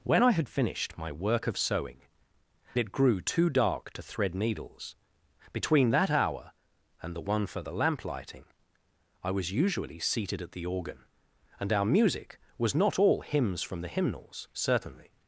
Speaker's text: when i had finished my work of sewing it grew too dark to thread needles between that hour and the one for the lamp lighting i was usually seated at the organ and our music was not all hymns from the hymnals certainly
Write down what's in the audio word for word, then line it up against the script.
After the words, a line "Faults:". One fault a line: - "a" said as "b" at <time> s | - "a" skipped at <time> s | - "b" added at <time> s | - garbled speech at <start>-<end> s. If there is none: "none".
when i had finished my work of sewing it grew too dark to thread needles between that hour and the one for the lamp lighting i was usually seated at the organ and our music was not all hymns from the hymnals certainly
Faults:
none